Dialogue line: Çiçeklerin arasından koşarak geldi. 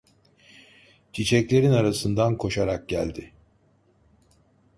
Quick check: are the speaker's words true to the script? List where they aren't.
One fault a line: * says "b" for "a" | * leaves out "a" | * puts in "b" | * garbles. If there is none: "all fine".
all fine